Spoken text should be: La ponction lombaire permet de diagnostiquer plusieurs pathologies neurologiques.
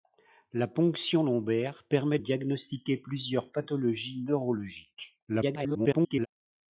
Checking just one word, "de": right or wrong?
wrong